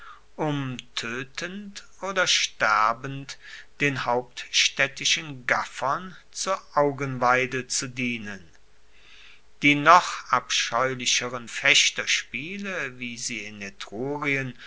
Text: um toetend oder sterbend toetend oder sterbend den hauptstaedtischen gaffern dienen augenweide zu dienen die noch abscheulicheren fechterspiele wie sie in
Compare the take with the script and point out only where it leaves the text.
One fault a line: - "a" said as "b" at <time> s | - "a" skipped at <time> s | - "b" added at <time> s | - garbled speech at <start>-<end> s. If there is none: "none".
- "toetend oder sterbend" skipped at 3.4 s
- "dienen" said as "zur" at 6.3 s